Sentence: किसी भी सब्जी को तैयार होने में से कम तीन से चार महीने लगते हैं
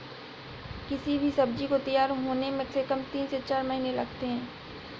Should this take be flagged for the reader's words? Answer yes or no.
no